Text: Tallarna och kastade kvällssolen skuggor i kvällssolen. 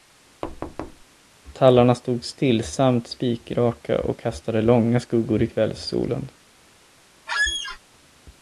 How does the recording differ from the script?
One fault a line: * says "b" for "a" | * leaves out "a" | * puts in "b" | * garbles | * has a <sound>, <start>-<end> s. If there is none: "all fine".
* has a thud, 0.4-1.0 s
* puts in "stod stillsamt spikraka"
* says "långa" for "kvällssolen"
* has a squeak, 7.3-7.8 s